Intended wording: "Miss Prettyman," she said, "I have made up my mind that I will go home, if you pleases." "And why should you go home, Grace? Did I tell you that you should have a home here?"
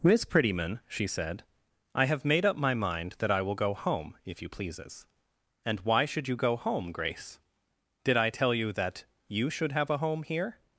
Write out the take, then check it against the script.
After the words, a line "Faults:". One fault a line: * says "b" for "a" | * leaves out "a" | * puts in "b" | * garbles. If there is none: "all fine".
"Miss Prettyman," she said, "I have made up my mind that I will go home, if you pleases." "And why should you go home, Grace? Did I tell you that you should have a home here?"
Faults:
all fine